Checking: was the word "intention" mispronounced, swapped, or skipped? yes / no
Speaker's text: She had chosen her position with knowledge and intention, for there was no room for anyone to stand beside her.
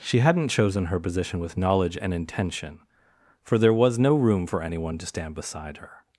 no